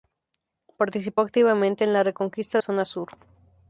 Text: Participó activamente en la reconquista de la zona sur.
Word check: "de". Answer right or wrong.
wrong